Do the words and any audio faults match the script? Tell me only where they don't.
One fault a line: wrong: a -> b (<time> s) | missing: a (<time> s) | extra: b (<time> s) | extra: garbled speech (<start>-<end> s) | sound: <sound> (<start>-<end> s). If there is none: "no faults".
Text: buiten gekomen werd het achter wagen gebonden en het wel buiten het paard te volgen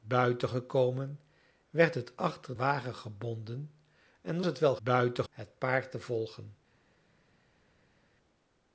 no faults